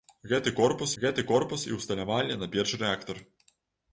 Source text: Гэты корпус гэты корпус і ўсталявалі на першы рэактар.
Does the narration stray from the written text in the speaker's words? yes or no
no